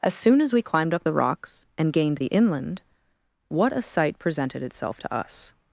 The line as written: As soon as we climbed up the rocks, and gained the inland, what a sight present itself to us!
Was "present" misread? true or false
true